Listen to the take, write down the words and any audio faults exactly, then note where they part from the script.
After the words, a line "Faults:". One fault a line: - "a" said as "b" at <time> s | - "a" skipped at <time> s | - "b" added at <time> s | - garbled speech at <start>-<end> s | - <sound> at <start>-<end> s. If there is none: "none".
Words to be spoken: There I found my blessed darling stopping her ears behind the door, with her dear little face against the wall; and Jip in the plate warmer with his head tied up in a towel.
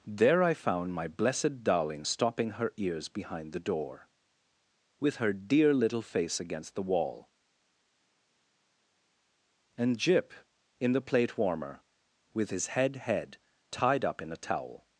There I found my blessed darling stopping her ears behind the door, with her dear little face against the wall; and Jip in the plate warmer with his head head tied up in a towel.
Faults:
- "head" added at 13.0 s